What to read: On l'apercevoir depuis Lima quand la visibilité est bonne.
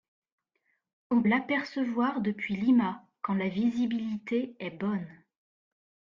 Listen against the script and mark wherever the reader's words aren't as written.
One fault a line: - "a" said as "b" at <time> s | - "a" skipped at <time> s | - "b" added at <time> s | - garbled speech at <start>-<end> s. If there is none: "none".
none